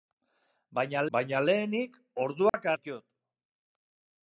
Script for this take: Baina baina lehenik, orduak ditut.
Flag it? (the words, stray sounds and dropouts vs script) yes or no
yes